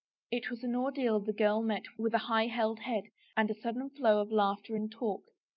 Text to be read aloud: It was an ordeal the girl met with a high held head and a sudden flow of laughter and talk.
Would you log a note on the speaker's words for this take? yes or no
no